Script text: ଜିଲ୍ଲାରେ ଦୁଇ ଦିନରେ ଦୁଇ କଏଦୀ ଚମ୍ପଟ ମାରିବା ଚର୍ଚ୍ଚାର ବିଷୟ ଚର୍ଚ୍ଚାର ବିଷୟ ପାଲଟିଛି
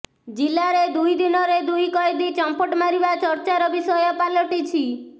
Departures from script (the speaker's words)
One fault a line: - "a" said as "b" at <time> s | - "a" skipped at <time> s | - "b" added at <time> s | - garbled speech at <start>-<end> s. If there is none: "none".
- "ଚର୍ଚ୍ଚାର ବିଷୟ" skipped at 4.0 s